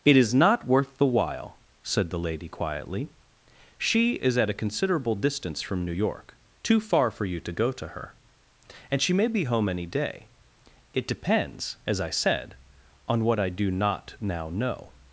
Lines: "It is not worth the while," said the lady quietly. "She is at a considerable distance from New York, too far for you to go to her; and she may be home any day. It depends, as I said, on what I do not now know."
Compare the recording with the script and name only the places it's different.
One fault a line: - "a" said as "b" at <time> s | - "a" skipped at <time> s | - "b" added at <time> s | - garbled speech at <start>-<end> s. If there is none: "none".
none